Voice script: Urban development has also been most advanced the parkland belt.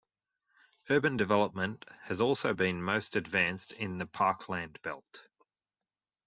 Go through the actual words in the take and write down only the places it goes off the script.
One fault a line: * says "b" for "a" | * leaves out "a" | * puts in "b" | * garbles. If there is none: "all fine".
* puts in "in"